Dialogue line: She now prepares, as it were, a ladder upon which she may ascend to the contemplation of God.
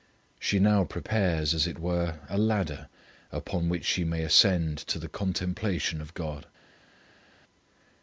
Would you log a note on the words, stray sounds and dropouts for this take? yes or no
no